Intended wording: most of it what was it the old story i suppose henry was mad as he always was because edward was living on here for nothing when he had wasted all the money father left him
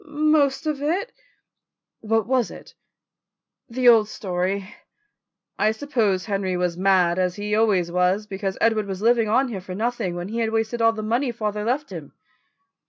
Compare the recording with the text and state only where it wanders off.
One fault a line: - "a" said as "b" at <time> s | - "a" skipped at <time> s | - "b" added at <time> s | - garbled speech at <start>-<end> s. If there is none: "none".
none